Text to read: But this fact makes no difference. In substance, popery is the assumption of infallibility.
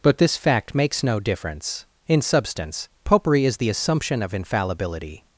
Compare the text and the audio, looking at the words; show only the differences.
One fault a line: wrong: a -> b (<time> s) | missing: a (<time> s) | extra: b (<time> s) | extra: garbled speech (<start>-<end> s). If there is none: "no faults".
no faults